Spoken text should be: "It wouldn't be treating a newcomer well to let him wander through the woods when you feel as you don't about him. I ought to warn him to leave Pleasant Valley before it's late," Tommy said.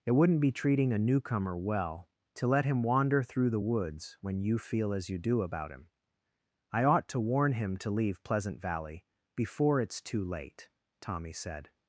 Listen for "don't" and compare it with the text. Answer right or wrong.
wrong